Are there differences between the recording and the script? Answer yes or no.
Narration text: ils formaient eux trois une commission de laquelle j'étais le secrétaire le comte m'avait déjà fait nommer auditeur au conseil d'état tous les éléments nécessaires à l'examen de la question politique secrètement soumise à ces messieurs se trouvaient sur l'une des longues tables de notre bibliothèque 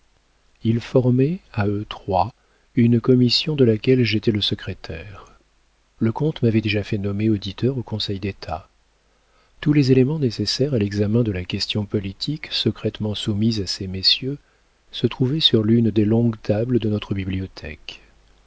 yes